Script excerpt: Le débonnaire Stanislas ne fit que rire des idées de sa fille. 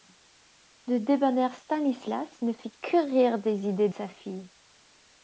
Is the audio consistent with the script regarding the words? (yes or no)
no